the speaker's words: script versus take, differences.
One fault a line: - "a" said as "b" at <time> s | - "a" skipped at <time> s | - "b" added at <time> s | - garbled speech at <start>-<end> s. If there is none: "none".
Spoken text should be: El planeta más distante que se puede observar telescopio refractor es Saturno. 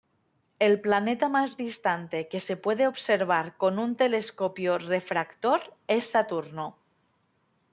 - "con un" added at 3.6 s